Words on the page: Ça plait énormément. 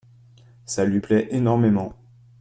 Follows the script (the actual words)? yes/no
no